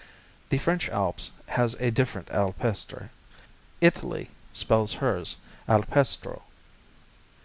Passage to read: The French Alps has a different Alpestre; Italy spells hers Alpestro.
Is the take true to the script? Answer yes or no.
yes